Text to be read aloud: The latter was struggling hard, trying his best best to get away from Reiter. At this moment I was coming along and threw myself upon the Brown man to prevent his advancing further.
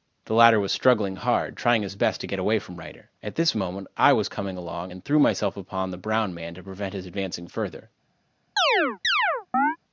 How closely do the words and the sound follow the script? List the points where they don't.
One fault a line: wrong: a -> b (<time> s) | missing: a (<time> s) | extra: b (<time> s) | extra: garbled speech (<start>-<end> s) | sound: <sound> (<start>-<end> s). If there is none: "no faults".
missing: best (2.2 s)
sound: chirp (8.6-9.8 s)